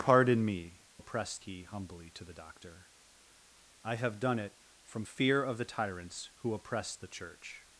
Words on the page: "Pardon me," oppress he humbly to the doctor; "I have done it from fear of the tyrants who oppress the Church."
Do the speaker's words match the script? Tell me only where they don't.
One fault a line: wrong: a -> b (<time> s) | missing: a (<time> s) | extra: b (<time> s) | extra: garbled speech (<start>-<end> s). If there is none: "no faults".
no faults